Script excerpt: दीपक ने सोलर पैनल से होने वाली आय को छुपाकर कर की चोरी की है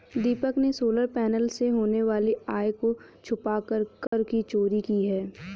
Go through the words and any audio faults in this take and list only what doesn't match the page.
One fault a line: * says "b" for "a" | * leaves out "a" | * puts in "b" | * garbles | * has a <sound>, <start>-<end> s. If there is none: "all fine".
* has a dropout, 4.1-4.1 s